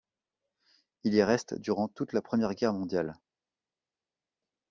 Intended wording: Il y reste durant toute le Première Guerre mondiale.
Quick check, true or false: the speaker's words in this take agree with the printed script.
false